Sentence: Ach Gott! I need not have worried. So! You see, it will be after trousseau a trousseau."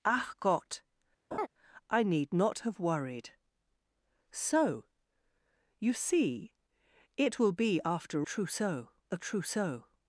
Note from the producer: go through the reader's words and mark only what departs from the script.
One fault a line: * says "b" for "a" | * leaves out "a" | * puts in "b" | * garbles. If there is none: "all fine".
all fine